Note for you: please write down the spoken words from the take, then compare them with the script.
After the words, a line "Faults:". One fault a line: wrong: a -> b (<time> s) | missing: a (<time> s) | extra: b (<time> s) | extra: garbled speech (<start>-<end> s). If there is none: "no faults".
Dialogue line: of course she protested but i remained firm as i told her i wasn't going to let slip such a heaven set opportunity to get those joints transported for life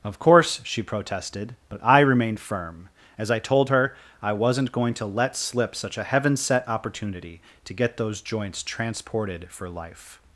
of course she protested but i remained firm as i told her i wasn't going to let slip such a heaven set opportunity to get those joints transported for life
Faults:
no faults